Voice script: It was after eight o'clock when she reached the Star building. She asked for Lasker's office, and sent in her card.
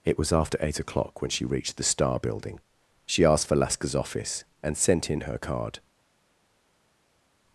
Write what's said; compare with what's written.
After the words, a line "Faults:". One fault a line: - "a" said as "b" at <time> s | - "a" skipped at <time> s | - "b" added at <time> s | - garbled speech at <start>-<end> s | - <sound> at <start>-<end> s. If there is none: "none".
It was after eight o'clock when she reached the Star building. She asked for Lasker's office, and sent in her card.
Faults:
none